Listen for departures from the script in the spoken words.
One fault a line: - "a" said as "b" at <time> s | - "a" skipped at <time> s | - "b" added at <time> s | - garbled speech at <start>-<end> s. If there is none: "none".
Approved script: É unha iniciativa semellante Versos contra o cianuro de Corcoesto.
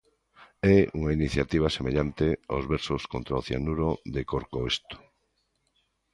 - "aos" added at 2.5 s